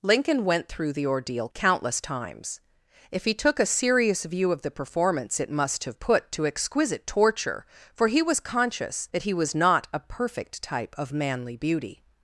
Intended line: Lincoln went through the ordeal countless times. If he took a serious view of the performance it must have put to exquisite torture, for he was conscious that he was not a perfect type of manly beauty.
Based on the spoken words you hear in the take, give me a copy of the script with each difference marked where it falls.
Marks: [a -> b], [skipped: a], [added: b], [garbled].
Lincoln went through the ordeal countless times. If he took a serious view of the performance it must have put to exquisite torture, for he was conscious that he was not a perfect type of manly beauty.